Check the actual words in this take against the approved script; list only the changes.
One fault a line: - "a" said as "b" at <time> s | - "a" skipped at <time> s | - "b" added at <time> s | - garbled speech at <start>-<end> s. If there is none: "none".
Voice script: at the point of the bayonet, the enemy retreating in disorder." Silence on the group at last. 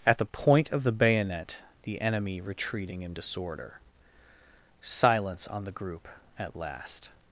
none